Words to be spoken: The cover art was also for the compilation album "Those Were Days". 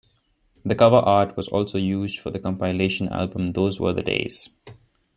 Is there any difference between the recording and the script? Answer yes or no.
yes